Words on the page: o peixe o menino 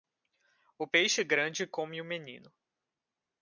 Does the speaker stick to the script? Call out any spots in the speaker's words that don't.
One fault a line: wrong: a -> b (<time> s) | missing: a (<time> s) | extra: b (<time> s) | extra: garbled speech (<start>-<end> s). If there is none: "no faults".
extra: grande come (1.2 s)